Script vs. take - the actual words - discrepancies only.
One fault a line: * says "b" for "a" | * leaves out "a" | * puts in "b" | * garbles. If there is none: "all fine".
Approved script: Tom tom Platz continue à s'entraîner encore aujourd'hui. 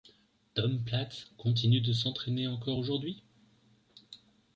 * leaves out "tom"
* says "de" for "à"